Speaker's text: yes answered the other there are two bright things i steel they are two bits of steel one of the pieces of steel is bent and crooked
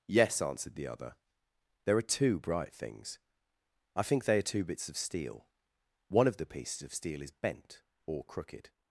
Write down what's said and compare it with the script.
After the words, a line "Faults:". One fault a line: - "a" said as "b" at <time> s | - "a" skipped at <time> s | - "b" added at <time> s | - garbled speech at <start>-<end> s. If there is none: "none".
yes answered the other there are two bright things i think they are two bits of steel one of the pieces of steel is bent or crooked
Faults:
- "steel" said as "think" at 4.0 s
- "and" said as "or" at 8.1 s